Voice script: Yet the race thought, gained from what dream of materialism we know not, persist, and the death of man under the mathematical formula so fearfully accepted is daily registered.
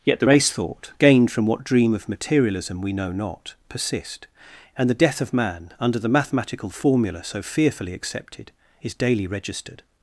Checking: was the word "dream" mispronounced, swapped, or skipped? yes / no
no